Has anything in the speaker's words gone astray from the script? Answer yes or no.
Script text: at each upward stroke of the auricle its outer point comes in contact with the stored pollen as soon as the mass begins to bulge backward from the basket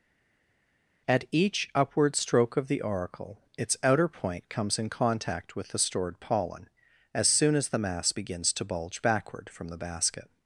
no